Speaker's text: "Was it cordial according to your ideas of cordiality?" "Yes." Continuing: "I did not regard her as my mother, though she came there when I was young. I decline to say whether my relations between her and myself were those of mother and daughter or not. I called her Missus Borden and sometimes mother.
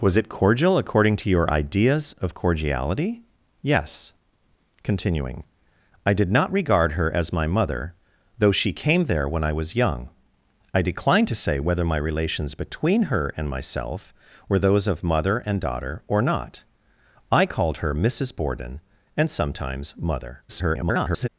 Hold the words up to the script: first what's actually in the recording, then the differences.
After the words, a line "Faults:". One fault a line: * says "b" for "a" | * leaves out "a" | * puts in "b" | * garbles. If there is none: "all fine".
"Was it cordial according to your ideas of cordiality?" "Yes." Continuing: "I did not regard her as my mother, though she came there when I was young. I decline to say whether my relations between her and myself were those of mother and daughter or not. I called her Missus Borden and sometimes mother. [garbled]
Faults:
* garbles